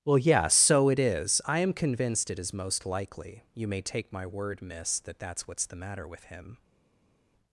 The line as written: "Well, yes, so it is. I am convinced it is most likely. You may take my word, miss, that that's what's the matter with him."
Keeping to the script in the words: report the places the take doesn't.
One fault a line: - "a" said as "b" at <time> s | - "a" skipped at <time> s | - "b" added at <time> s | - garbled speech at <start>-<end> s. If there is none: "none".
none